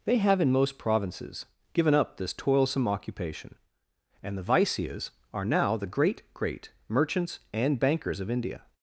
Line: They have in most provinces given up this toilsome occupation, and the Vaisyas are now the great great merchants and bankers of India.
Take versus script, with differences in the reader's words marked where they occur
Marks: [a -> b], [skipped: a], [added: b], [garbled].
They have in most provinces given up this toilsome occupation, and the Vaisyas are now the great great merchants and bankers of India.